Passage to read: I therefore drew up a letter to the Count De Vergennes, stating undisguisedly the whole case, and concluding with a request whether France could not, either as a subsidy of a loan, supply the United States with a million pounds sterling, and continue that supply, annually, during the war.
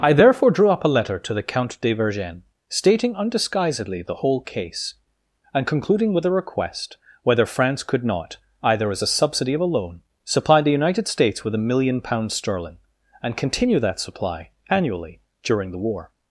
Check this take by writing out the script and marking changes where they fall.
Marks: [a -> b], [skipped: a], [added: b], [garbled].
I therefore drew up a letter to the Count De Vergennes, stating undisguisedly the whole case, and concluding with a request whether France could not, either as a subsidy of a loan, supply the United States with a million pounds sterling, and continue that supply, annually, during the war.